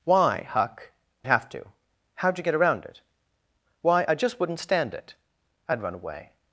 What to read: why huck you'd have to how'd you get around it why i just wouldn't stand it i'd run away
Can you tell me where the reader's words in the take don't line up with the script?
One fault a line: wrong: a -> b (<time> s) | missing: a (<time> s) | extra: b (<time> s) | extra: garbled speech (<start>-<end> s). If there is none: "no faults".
missing: you'd (0.9 s)